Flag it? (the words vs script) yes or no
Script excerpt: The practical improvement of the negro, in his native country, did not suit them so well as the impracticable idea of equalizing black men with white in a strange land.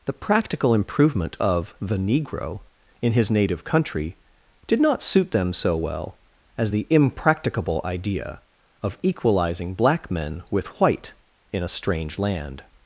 no